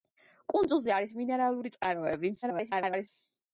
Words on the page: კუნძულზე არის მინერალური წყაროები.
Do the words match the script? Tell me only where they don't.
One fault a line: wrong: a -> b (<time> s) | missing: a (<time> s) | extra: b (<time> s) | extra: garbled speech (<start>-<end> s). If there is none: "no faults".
extra: garbled speech (2.4-3.1 s)